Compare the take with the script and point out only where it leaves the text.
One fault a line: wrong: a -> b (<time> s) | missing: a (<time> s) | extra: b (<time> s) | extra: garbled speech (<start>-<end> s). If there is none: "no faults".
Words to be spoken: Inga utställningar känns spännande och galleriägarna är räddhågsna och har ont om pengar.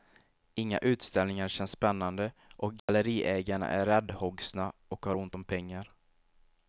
no faults